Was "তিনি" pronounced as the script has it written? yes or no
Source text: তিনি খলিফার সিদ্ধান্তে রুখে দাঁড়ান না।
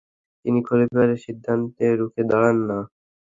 yes